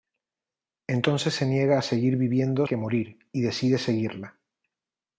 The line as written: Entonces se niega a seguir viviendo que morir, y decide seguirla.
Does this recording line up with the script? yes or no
yes